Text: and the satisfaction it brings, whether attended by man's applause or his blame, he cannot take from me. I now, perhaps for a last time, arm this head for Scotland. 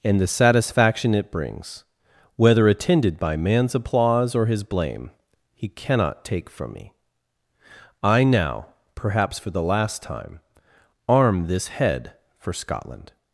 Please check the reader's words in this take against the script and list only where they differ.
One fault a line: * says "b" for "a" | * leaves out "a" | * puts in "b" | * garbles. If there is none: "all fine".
* says "the" for "a"